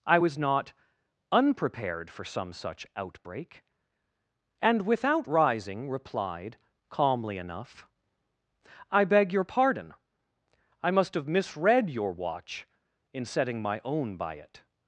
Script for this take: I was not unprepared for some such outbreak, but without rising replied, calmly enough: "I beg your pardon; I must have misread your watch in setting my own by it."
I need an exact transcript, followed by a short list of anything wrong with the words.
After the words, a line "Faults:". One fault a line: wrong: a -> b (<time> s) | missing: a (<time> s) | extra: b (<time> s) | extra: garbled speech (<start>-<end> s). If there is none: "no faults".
I was not unprepared for some such outbreak, and without rising replied, calmly enough: "I beg your pardon; I must have misread your watch in setting my own by it."
Faults:
wrong: but -> and (4.6 s)